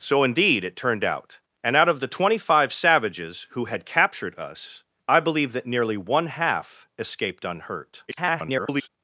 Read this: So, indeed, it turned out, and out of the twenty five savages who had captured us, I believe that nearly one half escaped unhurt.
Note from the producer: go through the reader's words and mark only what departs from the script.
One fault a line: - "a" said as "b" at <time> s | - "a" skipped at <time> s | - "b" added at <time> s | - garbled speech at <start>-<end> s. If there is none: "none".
- garbled speech at 8.1-8.9 s